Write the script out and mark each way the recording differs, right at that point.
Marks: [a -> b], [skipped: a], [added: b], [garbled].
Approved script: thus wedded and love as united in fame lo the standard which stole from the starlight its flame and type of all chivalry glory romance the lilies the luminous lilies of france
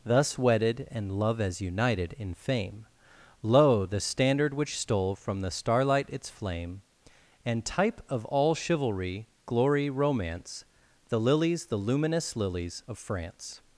thus wedded and love as united in fame lo the standard which stole from the starlight its flame and type of all chivalry glory romance the lilies the luminous lilies of france